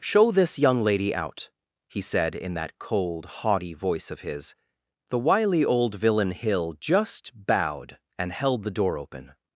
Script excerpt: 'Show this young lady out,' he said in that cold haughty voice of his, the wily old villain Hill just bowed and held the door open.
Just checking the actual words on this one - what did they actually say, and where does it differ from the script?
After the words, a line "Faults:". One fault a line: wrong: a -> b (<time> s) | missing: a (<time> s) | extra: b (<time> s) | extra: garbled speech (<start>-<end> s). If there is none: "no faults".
'Show this young lady out,' he said in that cold haughty voice of his, the wily old villain Hill just bowed and held the door open.
Faults:
no faults